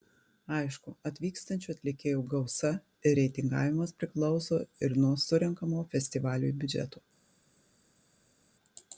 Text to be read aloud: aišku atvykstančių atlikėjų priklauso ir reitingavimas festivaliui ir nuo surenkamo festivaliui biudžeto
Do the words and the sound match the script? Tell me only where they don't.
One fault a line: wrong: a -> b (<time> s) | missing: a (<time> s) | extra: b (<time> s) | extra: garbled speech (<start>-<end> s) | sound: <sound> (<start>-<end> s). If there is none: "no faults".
wrong: priklauso -> gausa (2.3 s)
wrong: festivaliui -> priklauso (4.0 s)